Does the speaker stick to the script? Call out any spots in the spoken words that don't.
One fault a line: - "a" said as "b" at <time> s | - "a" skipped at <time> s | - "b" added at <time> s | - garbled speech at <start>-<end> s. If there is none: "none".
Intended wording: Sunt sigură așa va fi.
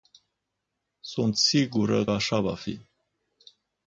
none